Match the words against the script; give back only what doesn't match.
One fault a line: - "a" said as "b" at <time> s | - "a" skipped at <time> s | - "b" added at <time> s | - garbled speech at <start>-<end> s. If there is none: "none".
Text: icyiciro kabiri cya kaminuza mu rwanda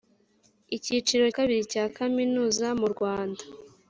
none